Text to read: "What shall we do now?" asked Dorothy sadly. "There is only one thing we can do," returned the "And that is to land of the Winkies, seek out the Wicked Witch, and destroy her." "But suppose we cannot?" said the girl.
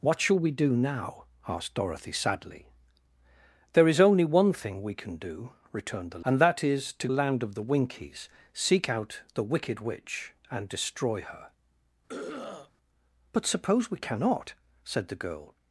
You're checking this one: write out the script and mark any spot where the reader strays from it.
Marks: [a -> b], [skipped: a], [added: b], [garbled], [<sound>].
"What shall we do now?" asked Dorothy sadly. "There is only one thing we can do," returned the "And that is to land of the Winkies, seek out the Wicked Witch, and destroy her." [throat clearing] "But suppose we cannot?" said the girl.